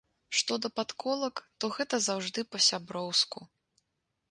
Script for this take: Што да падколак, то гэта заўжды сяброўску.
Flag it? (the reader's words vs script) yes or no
yes